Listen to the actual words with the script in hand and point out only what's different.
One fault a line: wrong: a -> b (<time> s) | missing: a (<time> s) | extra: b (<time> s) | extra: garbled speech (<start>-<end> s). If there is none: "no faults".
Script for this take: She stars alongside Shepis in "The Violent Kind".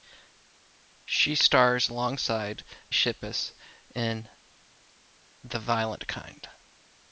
no faults